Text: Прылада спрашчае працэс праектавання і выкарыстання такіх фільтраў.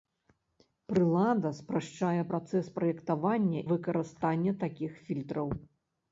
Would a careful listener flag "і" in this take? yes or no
yes